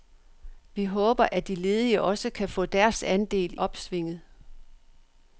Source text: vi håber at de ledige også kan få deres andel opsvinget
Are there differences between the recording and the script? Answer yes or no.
no